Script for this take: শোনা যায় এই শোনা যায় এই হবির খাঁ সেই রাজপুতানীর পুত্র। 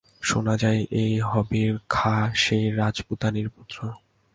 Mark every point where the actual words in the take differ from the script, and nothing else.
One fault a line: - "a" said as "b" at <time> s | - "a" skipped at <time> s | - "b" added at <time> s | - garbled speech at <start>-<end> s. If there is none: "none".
- "শোনা যায় এই" skipped at 1.1 s